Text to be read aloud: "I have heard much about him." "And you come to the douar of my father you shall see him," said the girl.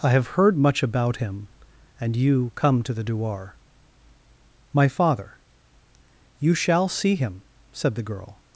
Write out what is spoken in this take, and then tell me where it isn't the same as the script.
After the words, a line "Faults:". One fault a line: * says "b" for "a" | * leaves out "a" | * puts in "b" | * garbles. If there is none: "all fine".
"I have heard much about him." "And you come to the douar my father you shall see him," said the girl.
Faults:
* leaves out "of"